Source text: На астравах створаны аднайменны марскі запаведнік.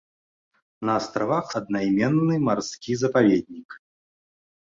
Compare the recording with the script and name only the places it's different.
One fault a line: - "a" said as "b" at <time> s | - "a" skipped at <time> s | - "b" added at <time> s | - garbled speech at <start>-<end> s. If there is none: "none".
- "створаны" skipped at 1.5 s